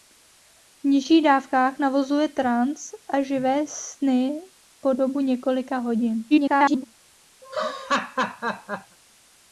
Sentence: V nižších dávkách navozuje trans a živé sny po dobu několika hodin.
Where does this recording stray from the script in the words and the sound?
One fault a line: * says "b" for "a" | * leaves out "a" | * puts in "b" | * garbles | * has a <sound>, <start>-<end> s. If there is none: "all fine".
* garbles
* has a laugh, 7.4-9.0 s